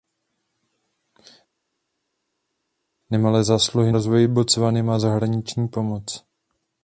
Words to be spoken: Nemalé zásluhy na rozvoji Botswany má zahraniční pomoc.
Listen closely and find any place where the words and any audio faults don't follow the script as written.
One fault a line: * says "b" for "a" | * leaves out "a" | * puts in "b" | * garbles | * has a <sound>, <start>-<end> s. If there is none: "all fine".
* leaves out "na"